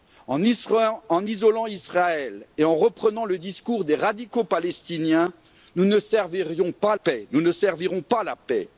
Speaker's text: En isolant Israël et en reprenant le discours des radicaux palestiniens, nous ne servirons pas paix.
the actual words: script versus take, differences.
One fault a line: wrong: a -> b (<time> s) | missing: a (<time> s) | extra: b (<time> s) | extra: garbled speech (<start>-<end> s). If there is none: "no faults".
no faults